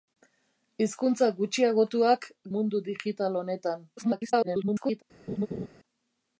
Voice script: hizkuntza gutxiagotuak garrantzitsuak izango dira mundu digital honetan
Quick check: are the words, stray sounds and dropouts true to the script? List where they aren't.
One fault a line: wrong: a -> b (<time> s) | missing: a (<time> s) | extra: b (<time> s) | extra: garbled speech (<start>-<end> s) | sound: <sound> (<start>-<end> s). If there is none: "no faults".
missing: garrantzitsuak izango dira (2.2 s)
extra: garbled speech (4.0-5.0 s)
sound: laugh (5.3-5.7 s)